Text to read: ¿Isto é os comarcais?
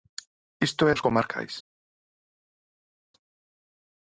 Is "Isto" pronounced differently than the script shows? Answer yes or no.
no